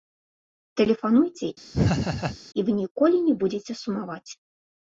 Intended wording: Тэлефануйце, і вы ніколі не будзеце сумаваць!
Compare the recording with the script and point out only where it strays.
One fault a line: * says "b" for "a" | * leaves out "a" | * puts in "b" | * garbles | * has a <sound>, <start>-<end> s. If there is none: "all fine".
* has a laugh, 1.7-2.4 s